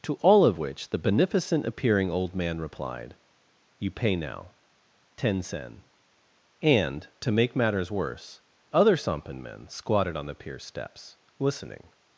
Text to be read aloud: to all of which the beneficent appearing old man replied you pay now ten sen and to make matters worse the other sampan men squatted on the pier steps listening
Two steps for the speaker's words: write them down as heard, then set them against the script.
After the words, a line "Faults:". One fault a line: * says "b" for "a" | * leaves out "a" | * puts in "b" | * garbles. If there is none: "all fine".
to all of which the beneficent appearing old man replied you pay now ten sen and to make matters worse other sampan men squatted on the pier steps listening
Faults:
* leaves out "the"